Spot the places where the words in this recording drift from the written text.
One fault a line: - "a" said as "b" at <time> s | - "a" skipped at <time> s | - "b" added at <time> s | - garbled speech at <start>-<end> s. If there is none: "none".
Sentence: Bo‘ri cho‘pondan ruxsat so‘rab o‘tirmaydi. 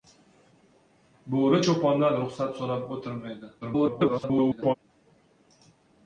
- garbled speech at 3.6-4.7 s